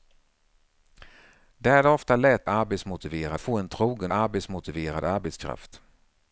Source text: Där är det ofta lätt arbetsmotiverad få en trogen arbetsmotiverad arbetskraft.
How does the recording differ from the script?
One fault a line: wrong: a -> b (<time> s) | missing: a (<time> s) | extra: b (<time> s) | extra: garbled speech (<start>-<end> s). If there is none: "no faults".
no faults